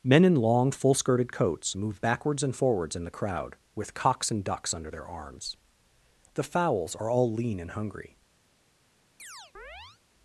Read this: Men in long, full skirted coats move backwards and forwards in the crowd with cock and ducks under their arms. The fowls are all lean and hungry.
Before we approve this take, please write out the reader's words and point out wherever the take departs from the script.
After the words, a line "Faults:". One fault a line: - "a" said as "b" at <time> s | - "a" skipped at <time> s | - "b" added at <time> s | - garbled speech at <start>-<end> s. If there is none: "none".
Men in long, full skirted coats move backwards and forwards in the crowd with cocks and ducks under their arms. The fowls are all lean and hungry.
Faults:
- "cock" said as "cocks" at 3.9 s